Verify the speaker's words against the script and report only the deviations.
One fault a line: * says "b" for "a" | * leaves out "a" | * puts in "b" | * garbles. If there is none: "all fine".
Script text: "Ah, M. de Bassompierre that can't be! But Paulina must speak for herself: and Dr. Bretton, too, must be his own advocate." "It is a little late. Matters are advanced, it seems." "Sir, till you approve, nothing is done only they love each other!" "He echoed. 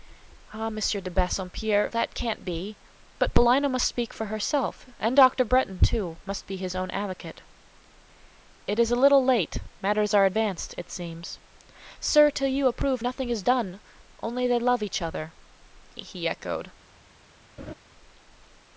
all fine